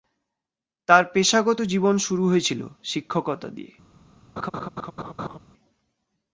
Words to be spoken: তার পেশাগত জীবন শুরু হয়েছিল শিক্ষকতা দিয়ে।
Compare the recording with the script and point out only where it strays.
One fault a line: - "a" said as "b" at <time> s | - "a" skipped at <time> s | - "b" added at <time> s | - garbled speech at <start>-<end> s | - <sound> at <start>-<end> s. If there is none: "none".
- laugh at 4.4-5.4 s